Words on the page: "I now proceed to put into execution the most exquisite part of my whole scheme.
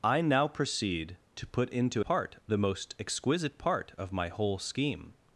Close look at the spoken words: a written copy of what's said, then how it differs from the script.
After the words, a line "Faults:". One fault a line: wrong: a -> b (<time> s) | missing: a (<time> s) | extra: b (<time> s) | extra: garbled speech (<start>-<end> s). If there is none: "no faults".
"I now proceed to put into part the most exquisite part of my whole scheme.
Faults:
wrong: execution -> part (2.0 s)